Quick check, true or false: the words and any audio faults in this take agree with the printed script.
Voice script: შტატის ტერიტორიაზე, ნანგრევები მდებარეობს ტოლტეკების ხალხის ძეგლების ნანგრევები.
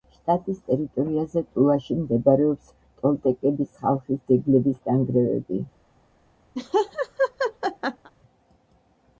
false